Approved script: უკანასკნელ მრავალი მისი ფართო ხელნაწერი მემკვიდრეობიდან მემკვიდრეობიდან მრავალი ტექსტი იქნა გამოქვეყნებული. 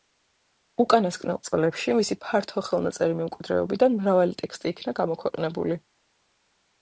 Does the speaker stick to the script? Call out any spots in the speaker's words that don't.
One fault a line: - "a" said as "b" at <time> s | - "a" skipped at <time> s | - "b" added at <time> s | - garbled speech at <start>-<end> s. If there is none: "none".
- "მრავალი" said as "წლებში" at 1.5 s
- "მემკვიდრეობიდან" skipped at 4.0 s